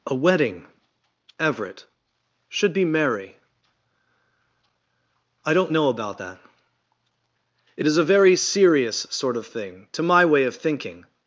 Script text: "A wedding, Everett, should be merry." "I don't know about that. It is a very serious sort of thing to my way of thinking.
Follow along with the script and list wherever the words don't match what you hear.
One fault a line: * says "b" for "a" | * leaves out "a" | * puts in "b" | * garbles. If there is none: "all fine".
all fine